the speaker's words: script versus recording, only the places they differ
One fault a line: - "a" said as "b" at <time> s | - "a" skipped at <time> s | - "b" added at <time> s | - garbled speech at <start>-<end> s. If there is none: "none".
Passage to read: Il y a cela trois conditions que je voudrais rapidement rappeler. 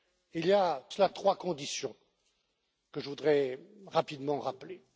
none